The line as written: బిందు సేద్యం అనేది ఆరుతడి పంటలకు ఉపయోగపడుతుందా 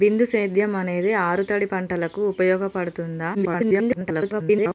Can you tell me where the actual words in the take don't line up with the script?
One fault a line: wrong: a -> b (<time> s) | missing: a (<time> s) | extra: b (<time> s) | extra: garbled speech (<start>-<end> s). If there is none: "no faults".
extra: garbled speech (3.3-4.7 s)